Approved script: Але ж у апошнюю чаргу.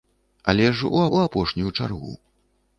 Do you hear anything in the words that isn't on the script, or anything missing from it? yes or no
yes